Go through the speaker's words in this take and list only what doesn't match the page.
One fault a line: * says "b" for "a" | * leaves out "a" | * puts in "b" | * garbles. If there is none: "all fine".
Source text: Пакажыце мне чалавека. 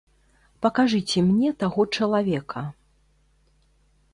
* puts in "таго"